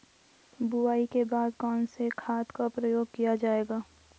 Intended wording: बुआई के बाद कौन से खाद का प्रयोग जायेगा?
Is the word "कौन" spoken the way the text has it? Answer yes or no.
yes